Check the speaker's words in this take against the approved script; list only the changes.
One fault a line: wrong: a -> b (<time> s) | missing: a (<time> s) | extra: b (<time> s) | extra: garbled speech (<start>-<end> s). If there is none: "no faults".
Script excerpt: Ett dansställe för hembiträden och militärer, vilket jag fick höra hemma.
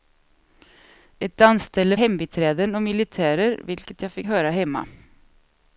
missing: för (2.0 s)